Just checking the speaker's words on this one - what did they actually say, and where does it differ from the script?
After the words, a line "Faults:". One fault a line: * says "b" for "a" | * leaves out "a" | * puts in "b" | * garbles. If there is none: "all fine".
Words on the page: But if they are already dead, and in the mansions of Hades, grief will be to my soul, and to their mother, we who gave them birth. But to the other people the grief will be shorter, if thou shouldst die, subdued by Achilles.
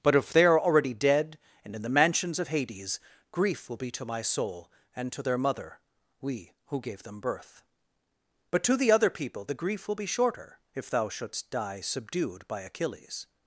But if they are already dead, and in the mansions of Hades, grief will be to my soul, and to their mother, we who gave them birth. But to the other people the grief will be shorter, if thou shouldst die, subdued by Achilles.
Faults:
all fine